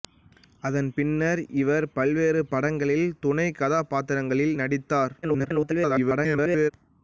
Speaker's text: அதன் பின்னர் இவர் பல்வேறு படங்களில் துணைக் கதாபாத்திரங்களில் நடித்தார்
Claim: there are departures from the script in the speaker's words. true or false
true